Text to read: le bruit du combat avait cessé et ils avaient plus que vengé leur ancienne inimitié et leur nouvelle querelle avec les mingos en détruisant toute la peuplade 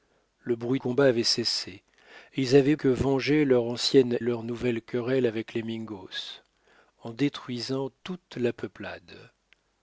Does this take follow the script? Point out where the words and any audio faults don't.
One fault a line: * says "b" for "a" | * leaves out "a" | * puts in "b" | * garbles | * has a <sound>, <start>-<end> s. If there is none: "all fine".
* leaves out "du"
* leaves out "plus"
* leaves out "inimitié"